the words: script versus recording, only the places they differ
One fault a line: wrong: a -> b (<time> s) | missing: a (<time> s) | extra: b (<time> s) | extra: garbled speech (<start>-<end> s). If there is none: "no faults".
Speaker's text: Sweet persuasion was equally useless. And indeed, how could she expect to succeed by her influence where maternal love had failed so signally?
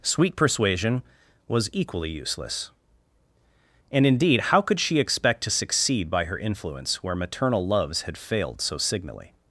wrong: love -> loves (7.7 s)